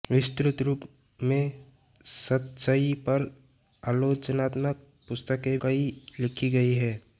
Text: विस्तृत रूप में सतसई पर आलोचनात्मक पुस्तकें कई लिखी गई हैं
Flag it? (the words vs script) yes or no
no